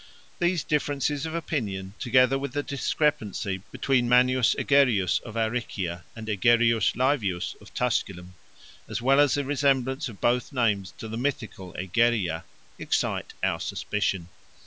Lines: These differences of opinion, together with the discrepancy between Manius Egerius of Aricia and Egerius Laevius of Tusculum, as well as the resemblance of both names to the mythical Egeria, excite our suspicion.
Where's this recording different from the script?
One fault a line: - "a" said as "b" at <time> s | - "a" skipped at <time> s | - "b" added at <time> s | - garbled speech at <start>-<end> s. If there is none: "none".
none